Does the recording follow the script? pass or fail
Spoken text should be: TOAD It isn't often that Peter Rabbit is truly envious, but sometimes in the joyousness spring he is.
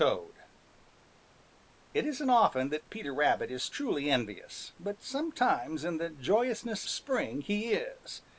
pass